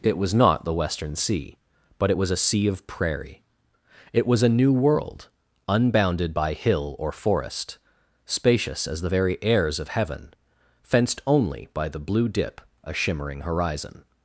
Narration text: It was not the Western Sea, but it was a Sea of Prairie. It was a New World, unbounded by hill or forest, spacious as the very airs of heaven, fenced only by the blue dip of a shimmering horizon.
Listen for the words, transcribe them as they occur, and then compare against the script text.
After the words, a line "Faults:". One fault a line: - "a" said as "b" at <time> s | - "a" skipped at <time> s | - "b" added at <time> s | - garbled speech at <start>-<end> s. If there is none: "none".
It was not the Western Sea, but it was a Sea of Prairie. It was a New World, unbounded by hill or forest, spacious as the very airs of heaven, fenced only by the blue dip a shimmering horizon.
Faults:
- "of" skipped at 12.6 s